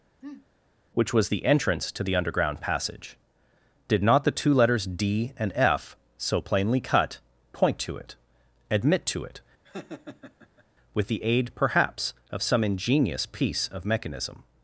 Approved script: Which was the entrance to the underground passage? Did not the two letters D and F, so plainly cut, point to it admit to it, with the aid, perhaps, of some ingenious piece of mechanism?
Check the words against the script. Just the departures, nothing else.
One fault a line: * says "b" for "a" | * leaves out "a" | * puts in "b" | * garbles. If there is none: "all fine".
all fine